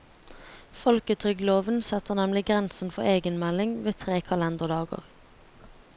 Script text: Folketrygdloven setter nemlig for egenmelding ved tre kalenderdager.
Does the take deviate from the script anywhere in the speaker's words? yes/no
yes